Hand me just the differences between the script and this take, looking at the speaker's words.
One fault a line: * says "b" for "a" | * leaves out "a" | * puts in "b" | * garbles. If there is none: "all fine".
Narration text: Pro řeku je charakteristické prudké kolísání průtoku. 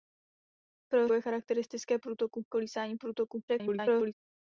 * leaves out "řeku"
* says "průtoku" for "prudké"
* garbles